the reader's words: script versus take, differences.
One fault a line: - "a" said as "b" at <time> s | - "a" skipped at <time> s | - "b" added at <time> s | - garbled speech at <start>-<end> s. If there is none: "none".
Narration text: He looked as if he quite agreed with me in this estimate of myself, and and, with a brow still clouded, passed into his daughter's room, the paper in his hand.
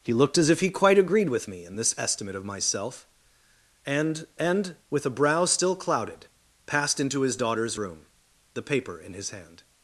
none